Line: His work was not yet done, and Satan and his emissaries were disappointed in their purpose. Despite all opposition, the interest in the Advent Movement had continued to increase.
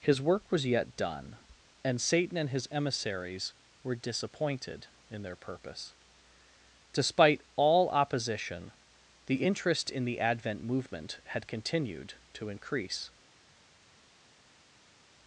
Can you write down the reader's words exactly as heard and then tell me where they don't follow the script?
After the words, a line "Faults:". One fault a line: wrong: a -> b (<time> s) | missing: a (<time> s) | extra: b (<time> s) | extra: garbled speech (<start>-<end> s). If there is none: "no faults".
His work was yet done, and Satan and his emissaries were disappointed in their purpose. Despite all opposition, the interest in the Advent Movement had continued to increase.
Faults:
missing: not (0.7 s)